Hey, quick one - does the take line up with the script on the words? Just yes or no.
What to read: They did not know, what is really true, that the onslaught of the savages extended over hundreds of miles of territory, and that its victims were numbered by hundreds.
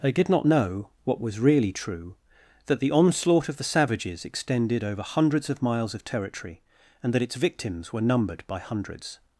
no